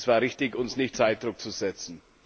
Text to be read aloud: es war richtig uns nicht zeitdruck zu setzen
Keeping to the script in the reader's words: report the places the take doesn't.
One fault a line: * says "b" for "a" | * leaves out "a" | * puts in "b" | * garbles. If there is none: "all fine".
all fine